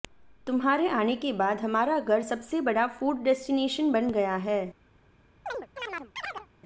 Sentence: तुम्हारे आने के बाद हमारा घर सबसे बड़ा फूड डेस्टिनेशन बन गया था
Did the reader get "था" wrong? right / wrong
wrong